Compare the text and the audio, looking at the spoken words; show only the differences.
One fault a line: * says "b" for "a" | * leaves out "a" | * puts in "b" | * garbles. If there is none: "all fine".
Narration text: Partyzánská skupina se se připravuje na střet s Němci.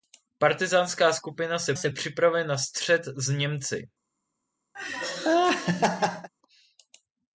all fine